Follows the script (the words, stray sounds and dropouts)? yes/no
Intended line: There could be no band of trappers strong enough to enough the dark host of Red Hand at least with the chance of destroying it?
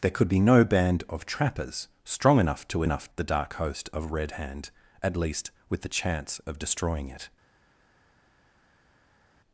yes